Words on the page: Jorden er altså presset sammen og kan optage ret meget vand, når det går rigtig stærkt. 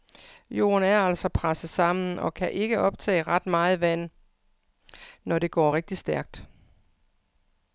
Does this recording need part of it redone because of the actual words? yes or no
yes